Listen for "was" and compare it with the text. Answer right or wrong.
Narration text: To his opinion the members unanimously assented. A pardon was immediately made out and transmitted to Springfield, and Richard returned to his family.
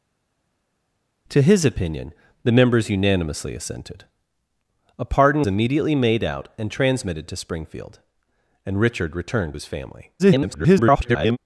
wrong